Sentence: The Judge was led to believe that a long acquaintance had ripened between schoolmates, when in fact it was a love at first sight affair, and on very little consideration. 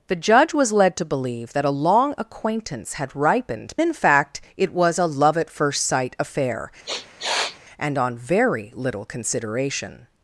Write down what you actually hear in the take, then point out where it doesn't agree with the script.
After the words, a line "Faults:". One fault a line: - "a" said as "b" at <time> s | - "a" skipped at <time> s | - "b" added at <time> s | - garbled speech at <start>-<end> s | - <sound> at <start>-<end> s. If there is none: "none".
The Judge was led to believe that a long acquaintance had ripened in fact it was a love at first sight affair, and on very little consideration.
Faults:
- "between schoolmates when" skipped at 3.8 s
- sniff at 6.9-7.6 s